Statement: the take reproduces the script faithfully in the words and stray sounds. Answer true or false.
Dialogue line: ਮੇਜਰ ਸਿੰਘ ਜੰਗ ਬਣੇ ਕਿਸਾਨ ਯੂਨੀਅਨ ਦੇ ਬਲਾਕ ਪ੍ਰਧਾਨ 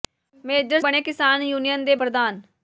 false